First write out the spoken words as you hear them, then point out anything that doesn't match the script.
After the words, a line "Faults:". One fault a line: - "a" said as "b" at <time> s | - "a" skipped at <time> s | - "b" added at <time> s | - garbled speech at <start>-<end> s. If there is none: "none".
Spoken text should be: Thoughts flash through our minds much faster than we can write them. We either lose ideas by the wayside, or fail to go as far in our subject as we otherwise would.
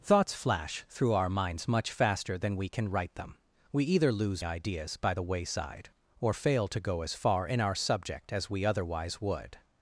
Thoughts flash through our minds much faster than we can write them. We either lose ideas by the wayside, or fail to go as far in our subject as we otherwise would.
Faults:
none